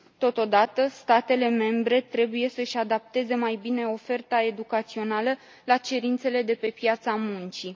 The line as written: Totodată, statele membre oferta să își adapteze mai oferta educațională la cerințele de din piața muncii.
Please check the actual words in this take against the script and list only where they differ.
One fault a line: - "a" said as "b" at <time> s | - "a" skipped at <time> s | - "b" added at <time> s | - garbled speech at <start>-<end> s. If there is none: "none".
- "oferta" said as "trebuie" at 2.0 s
- "bine" added at 3.6 s
- "din" said as "pe" at 6.5 s